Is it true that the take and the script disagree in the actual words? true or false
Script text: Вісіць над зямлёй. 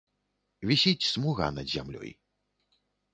true